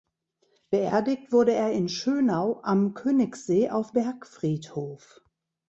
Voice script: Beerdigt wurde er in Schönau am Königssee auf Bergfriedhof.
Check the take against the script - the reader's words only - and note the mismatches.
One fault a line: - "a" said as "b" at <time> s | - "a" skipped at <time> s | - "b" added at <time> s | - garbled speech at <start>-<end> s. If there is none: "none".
none